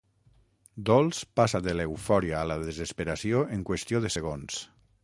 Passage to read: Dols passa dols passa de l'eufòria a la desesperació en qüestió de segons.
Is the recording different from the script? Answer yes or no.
yes